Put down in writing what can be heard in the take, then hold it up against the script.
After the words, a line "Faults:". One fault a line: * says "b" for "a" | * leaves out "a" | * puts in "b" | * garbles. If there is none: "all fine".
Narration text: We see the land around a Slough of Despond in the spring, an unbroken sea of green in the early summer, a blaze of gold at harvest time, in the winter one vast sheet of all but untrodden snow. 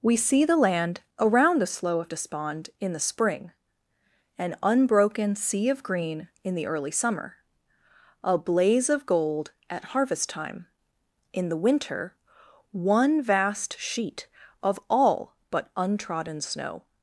We see the land around the Slough of Despond in the spring, an unbroken sea of green in the early summer, a blaze of gold at harvest time, in the winter one vast sheet of all but untrodden snow.
Faults:
* says "the" for "a"